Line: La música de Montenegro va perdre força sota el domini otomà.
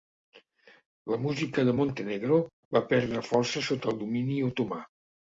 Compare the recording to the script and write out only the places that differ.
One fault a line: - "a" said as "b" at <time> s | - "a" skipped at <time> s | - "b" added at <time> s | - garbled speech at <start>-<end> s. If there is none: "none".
none